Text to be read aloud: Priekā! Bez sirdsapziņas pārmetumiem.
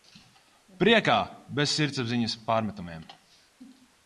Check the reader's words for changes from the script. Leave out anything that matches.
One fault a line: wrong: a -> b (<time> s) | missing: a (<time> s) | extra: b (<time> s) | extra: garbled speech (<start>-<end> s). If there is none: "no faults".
no faults